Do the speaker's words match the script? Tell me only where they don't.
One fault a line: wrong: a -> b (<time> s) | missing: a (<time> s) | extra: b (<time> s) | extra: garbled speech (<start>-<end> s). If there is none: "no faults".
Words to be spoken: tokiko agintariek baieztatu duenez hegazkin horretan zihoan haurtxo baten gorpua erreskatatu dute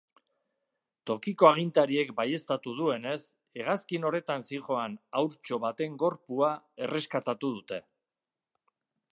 no faults